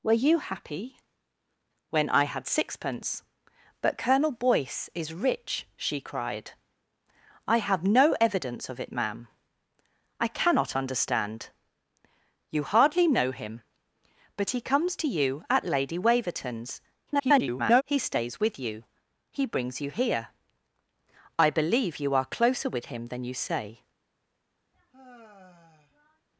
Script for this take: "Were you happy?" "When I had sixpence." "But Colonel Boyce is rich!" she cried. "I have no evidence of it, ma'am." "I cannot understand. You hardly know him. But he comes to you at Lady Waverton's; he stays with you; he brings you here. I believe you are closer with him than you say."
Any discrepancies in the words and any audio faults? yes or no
yes